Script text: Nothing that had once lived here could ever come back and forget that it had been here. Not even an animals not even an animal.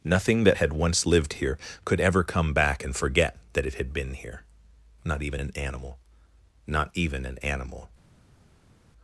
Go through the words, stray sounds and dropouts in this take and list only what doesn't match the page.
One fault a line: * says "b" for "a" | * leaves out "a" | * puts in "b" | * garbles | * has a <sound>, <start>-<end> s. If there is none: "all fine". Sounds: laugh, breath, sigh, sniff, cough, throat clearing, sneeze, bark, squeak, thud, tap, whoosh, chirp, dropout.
* says "animal" for "animals"